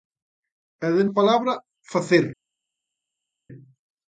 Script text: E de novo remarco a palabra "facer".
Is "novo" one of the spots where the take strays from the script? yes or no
yes